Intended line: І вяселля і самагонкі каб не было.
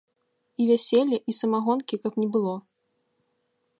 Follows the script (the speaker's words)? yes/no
yes